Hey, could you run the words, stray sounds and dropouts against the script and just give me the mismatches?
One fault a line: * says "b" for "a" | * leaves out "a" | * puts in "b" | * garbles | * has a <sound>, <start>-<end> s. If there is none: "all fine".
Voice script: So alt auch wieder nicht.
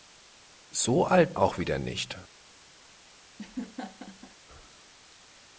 * has a laugh, 3.4-4.3 s